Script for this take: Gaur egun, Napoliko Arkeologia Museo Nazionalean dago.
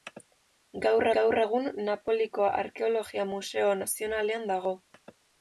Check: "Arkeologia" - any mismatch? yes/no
no